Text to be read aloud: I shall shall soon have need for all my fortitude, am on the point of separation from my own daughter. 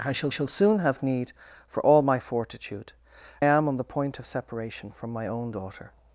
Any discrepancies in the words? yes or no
no